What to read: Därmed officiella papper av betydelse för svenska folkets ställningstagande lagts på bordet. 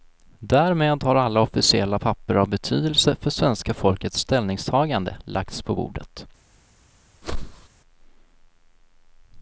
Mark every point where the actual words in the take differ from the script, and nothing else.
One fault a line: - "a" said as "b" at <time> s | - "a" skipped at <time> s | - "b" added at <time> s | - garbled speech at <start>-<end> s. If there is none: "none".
- "har alla" added at 1.0 s